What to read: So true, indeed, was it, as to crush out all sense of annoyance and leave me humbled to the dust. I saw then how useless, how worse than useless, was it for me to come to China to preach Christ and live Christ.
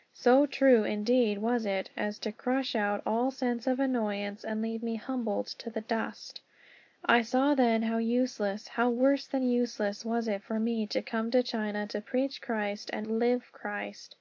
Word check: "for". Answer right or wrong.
right